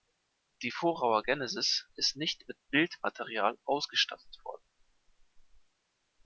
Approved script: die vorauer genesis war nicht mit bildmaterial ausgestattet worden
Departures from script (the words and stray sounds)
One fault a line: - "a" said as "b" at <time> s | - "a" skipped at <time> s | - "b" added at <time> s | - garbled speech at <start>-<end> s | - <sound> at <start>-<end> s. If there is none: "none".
- "war" said as "ist" at 1.9 s